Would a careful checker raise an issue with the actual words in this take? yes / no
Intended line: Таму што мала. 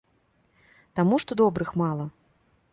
yes